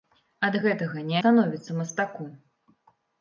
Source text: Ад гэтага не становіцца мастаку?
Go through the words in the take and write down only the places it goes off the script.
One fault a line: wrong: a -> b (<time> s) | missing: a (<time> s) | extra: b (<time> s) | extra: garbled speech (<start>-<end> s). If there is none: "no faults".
no faults